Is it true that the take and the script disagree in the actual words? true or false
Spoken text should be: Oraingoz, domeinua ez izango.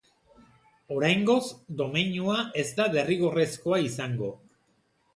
true